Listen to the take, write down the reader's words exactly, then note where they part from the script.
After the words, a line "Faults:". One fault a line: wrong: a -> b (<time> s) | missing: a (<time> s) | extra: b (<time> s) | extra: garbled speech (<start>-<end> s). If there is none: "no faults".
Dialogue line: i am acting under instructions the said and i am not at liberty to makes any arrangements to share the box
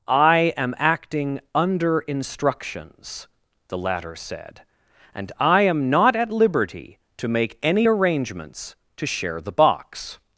i am acting under instructions the latter said and i am not at liberty to make any arrangements to share the box
Faults:
extra: latter (3.8 s)
wrong: makes -> make (7.3 s)